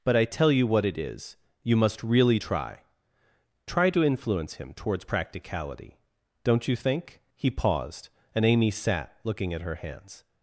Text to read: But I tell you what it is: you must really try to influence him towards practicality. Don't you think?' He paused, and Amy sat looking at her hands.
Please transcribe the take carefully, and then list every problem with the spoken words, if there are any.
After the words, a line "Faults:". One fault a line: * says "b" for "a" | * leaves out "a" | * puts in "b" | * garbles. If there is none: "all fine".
But I tell you what it is: you must really try try to influence him towards practicality. Don't you think?' He paused, and Amy sat looking at her hands.
Faults:
* puts in "try"